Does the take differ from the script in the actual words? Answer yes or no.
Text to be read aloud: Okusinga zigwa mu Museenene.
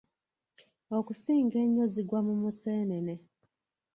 yes